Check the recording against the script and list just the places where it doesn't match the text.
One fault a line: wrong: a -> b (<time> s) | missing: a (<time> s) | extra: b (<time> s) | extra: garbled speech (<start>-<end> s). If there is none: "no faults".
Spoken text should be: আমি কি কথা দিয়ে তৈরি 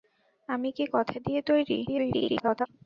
extra: garbled speech (1.9-2.7 s)